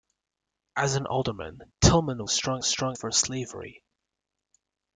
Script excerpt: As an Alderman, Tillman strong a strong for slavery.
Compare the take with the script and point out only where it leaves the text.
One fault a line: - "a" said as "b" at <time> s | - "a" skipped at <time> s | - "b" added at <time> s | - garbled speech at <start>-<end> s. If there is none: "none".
none